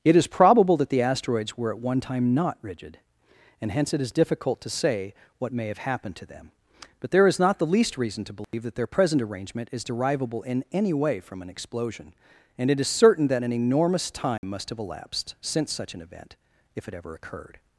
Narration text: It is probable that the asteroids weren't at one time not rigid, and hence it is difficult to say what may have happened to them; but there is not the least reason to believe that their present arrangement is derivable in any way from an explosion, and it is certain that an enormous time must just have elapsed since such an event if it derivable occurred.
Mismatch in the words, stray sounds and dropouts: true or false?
true